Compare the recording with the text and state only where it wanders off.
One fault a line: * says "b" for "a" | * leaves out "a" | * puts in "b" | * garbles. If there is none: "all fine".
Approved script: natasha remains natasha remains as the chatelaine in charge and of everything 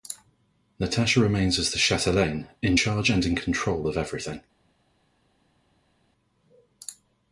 * leaves out "natasha remains"
* puts in "in control"